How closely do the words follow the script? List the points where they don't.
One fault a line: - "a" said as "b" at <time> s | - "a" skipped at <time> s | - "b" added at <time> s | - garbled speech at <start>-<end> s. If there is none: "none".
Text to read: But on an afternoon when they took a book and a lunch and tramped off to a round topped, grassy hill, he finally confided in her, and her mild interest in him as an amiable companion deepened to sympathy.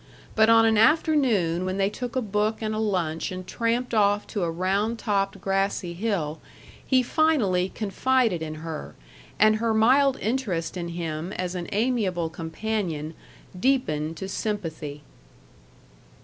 none